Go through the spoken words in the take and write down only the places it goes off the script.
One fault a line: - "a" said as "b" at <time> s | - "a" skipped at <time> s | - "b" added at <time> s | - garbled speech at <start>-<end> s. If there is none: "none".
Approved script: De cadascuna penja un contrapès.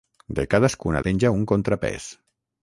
none